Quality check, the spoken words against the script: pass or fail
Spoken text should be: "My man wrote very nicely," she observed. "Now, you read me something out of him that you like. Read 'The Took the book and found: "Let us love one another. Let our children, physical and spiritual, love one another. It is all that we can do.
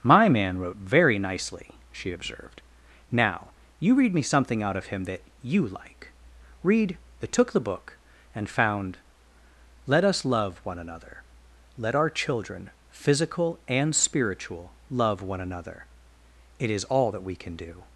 pass